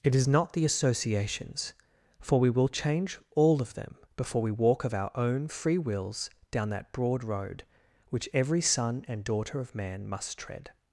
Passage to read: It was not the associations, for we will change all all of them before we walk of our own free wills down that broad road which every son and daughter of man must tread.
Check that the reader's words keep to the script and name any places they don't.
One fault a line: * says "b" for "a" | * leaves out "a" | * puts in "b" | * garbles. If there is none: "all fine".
* says "is" for "was"
* leaves out "all"